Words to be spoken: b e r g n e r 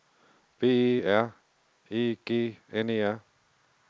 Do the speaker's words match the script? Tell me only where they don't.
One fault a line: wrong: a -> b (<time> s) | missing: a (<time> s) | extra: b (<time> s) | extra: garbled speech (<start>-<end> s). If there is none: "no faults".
extra: e (1.9 s)